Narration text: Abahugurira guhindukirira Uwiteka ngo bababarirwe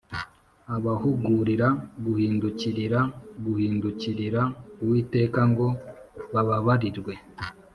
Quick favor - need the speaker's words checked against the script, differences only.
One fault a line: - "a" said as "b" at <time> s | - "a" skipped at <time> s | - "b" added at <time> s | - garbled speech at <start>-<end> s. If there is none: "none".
- "guhindukirira" added at 3.4 s